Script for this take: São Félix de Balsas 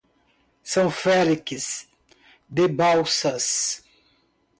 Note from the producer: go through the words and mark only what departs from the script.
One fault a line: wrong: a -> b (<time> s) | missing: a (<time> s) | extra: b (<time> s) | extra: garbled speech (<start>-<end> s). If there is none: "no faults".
no faults